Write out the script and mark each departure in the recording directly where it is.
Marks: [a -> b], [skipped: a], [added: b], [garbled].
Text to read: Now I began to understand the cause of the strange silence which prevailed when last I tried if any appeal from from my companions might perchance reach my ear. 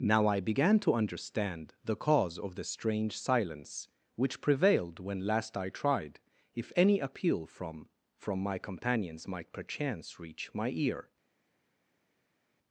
Now I began to understand the cause of the strange silence which prevailed when last I tried if any appeal from from my companions might perchance reach my ear.